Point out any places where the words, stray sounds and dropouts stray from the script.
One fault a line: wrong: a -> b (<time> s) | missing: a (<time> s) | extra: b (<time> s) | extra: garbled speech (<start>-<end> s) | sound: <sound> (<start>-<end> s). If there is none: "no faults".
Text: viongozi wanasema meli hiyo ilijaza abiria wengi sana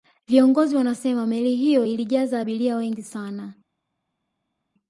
no faults